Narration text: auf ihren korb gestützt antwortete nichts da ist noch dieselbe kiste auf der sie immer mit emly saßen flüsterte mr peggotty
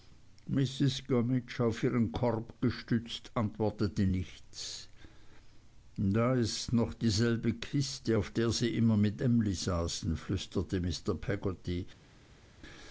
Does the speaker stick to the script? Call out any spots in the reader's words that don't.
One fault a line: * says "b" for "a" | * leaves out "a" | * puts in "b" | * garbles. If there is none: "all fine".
all fine